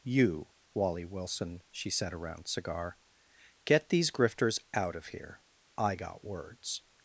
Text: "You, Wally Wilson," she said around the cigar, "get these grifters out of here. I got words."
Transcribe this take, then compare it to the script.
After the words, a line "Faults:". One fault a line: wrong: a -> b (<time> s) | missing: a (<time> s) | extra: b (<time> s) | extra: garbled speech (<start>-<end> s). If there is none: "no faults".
"You, Wally Wilson," she said around cigar, "get these grifters out of here. I got words."
Faults:
missing: the (2.5 s)